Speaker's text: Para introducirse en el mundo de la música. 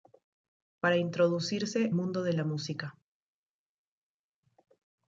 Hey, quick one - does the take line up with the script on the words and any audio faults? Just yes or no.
no